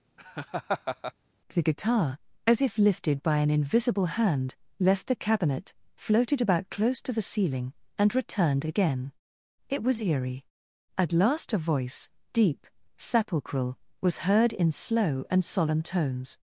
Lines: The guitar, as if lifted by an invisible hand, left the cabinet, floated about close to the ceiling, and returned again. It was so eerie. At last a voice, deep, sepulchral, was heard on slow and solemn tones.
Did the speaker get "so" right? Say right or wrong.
wrong